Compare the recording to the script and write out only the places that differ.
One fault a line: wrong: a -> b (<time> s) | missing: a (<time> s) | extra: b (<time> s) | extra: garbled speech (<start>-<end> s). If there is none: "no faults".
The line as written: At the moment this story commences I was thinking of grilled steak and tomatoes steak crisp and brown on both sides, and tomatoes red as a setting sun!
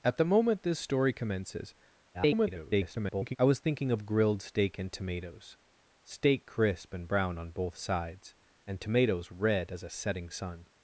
extra: garbled speech (2.1-3.4 s)